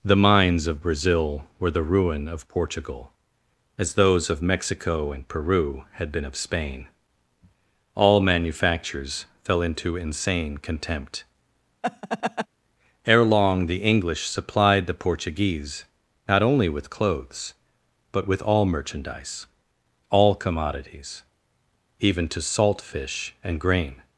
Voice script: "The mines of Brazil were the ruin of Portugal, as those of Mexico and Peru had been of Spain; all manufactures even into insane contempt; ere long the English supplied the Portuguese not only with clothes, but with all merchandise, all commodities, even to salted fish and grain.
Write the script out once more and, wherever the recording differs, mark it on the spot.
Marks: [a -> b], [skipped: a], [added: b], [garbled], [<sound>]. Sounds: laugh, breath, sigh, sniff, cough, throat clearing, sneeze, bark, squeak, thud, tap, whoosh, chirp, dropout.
"The mines of Brazil were the ruin of Portugal, as those of Mexico and Peru had been of Spain; all manufactures [even -> fell] into insane contempt; [laugh] ere long the English supplied the Portuguese not only with clothes, but with all merchandise, all commodities, even to [salted -> salt] fish and grain.